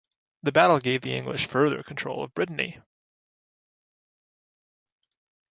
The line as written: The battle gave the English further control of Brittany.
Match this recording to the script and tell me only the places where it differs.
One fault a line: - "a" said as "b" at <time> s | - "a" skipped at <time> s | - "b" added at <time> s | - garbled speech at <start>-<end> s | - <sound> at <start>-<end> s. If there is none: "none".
none